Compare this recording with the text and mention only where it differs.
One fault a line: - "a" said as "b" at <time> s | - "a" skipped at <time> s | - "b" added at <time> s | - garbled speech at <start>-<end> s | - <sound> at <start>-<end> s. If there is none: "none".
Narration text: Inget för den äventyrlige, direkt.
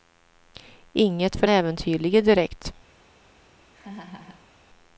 - "den" skipped at 1.5 s
- laugh at 3.7-4.5 s